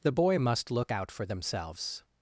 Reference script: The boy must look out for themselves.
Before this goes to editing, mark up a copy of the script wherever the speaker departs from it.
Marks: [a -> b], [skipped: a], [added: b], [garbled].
The boy must look out for themselves.